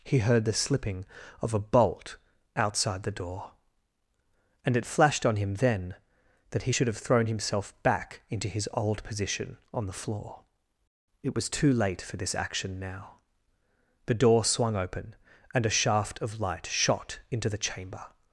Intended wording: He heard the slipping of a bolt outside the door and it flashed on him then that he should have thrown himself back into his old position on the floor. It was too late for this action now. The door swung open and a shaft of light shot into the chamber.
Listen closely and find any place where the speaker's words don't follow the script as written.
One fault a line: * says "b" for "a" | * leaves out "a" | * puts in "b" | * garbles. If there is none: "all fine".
all fine